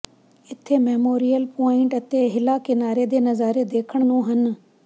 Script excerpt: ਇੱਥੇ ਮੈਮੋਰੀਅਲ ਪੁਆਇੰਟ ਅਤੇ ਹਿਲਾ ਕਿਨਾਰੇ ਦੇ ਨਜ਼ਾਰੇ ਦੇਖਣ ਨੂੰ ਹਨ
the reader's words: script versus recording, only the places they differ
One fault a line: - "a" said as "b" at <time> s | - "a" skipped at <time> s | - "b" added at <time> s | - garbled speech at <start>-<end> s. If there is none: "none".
none